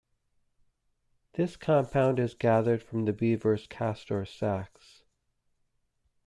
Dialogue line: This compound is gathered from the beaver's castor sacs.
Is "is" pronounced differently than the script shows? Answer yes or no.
no